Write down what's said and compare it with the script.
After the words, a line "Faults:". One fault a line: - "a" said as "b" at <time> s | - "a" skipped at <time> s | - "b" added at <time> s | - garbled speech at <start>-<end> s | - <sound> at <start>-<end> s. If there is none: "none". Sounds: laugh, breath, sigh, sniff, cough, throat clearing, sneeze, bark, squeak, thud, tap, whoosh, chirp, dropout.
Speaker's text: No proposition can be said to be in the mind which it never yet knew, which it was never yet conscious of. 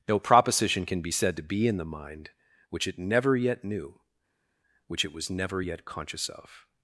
No proposition can be said to be in the mind which it never yet knew, which it was never yet conscious of.
Faults:
none